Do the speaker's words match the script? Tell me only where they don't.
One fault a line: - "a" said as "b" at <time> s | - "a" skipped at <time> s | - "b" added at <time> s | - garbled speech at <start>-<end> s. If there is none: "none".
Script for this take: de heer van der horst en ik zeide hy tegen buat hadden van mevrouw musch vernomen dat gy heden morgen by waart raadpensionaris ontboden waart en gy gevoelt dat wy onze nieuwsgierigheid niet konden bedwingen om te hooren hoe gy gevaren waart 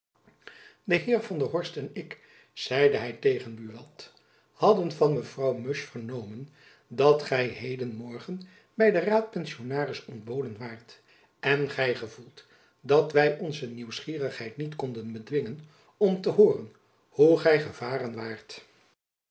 - "waart" said as "den" at 8.9 s